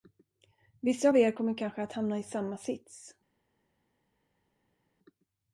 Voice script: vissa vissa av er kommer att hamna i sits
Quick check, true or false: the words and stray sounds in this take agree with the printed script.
false